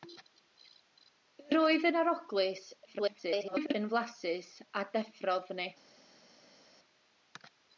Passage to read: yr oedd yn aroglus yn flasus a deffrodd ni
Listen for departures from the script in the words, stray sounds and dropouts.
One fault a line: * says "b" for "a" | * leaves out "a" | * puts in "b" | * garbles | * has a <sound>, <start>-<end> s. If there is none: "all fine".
* garbles